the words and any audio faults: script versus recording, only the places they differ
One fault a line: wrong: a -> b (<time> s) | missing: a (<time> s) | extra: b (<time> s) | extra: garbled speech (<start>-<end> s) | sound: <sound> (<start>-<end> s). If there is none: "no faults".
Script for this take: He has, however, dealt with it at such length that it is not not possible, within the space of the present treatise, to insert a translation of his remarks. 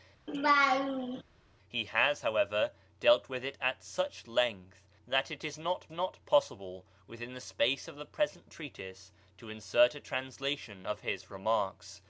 sound: laugh (0.3-1.2 s)